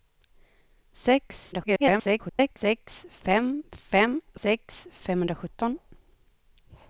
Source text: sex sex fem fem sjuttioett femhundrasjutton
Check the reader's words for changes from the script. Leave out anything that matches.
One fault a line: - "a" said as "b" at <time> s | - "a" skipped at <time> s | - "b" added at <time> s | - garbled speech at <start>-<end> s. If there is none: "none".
- garbled speech at 1.5-2.6 s
- "sjuttioett" said as "sex" at 4.4 s